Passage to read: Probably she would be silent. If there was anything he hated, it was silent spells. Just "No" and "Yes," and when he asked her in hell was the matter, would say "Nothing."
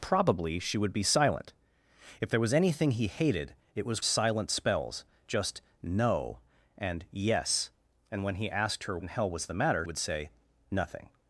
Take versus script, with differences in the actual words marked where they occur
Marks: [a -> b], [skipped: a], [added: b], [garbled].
Probably she would be silent. If there was anything he hated, it was silent spells. Just "No" and "Yes," and when he asked her in hell was the matter, would say "Nothing."